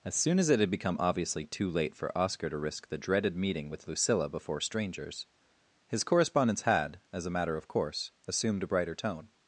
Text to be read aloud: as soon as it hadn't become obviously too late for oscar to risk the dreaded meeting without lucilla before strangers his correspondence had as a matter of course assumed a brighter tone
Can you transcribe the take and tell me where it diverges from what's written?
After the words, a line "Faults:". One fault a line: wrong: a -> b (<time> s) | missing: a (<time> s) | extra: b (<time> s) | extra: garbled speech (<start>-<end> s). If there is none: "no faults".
as soon as it had become obviously too late for oscar to risk the dreaded meeting with lucilla before strangers his correspondence had as a matter of course assumed a brighter tone
Faults:
wrong: hadn't -> had (0.6 s)
wrong: without -> with (3.7 s)